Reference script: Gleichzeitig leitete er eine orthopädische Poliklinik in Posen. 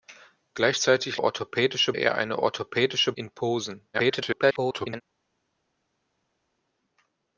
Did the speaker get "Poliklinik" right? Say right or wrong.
wrong